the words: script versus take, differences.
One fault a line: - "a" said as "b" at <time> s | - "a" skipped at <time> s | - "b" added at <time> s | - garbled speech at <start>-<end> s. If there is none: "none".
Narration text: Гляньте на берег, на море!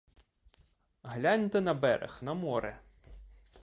none